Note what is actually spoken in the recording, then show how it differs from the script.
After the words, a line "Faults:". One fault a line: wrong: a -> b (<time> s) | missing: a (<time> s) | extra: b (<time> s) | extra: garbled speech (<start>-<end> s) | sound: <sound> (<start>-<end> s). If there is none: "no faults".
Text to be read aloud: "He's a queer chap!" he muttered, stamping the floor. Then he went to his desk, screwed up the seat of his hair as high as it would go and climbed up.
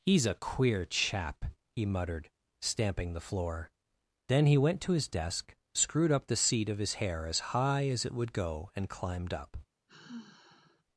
"He's a queer chap!" he muttered, stamping the floor. Then he went to his desk, screwed up the seat of his hair as high as it would go and climbed up.
Faults:
sound: sigh (9.9-10.8 s)